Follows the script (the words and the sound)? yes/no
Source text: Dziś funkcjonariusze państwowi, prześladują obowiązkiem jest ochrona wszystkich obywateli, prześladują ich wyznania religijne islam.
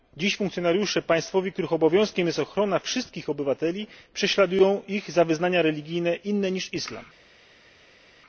no